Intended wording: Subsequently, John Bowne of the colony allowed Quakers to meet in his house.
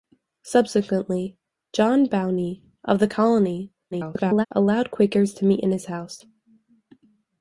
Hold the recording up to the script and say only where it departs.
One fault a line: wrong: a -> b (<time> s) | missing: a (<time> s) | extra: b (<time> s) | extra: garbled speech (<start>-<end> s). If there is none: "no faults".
extra: garbled speech (3.9-4.5 s)